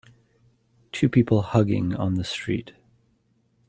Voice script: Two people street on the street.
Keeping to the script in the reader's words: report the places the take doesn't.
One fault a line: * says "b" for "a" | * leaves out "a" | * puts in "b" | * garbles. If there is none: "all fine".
* says "hugging" for "street"